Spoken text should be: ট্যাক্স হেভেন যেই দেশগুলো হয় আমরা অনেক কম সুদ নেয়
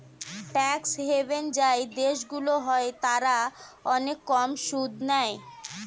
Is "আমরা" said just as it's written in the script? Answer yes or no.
no